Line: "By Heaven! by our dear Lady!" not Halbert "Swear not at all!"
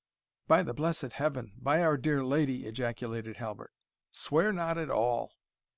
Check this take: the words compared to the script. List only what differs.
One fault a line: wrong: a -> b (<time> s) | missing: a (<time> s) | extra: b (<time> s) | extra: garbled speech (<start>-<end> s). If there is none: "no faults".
extra: the blessed (0.6 s)
wrong: not -> ejaculated (2.7 s)